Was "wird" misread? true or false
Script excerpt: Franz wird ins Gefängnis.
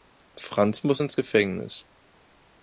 true